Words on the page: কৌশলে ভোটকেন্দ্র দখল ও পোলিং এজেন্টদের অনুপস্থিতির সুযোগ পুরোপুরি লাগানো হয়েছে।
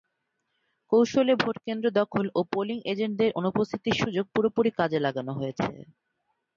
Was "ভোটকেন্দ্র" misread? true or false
false